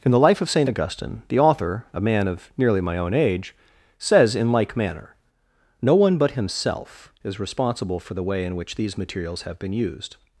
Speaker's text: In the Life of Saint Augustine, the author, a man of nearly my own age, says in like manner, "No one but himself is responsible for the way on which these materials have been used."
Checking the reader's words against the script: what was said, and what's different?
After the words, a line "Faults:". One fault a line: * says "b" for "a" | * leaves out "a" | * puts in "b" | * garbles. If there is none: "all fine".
In the Life of Saint Augustine, the author, a man of nearly my own age, says in like manner, "No one but himself is responsible for the way in which these materials have been used."
Faults:
* says "in" for "on"